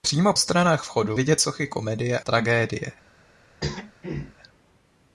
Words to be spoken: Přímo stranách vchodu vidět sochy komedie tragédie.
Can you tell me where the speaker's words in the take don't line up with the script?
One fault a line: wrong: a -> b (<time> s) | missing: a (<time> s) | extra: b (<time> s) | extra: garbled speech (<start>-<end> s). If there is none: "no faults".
no faults